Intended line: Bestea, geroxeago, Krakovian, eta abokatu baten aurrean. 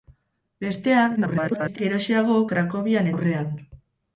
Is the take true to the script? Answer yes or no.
no